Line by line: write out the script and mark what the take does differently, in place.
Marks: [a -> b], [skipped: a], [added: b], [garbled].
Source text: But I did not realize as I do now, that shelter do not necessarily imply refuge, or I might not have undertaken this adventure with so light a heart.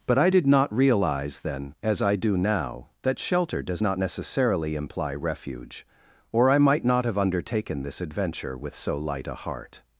But I did not realize [added: then] as I do now, that shelter [do -> does] not necessarily imply refuge, or I might not have undertaken this adventure with so light a heart.